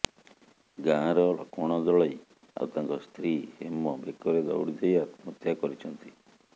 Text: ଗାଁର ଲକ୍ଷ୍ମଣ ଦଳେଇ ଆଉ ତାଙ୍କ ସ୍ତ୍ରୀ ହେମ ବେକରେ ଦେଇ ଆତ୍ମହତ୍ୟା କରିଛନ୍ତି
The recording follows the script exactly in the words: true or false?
false